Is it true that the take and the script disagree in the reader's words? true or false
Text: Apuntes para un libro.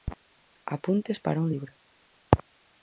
false